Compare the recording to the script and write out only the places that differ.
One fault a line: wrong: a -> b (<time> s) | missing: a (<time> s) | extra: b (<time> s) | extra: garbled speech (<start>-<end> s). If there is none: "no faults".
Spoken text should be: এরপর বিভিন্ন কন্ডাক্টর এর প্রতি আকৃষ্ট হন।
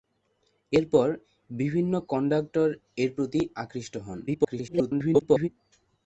extra: garbled speech (4.3-5.5 s)